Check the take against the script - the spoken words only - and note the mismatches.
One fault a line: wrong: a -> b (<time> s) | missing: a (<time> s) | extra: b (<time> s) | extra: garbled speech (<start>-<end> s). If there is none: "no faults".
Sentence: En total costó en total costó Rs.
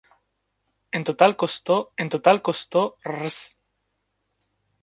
no faults